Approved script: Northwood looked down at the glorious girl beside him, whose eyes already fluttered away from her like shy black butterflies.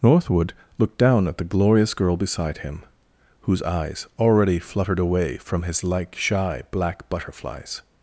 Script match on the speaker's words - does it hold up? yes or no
no